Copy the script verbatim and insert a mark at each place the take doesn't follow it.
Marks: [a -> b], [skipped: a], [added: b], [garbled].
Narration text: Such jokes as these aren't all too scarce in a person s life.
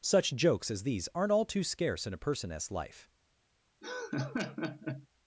Such jokes as these aren't all too scarce in a person s life.